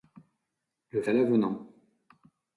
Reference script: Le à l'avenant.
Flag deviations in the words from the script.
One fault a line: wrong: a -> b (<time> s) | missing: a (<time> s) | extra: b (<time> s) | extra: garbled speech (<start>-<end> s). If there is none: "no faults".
no faults